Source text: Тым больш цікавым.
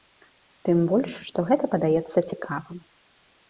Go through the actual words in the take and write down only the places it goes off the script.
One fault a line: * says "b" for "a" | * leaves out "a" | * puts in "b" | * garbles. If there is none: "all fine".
* puts in "што гэта падаецца"